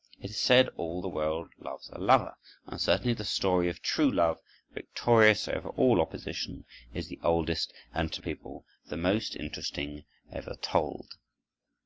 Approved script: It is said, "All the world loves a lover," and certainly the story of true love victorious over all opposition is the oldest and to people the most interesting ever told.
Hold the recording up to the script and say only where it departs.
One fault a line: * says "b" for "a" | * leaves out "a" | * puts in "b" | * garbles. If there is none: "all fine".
all fine